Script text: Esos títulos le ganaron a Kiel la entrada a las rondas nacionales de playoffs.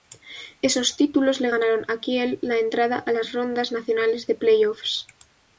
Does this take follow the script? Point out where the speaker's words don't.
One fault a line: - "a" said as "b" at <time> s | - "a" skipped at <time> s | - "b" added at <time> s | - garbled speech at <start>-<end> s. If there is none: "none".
none